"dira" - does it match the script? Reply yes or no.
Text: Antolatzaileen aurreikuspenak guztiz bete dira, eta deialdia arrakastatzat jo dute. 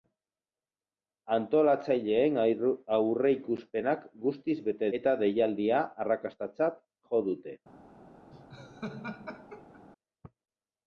no